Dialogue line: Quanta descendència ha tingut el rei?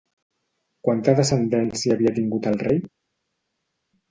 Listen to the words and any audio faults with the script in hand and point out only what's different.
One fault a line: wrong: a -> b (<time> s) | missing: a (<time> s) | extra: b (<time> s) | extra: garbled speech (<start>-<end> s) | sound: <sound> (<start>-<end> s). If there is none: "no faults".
wrong: ha -> havia (2.0 s)